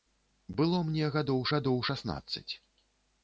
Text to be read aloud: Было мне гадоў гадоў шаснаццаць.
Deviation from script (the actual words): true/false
false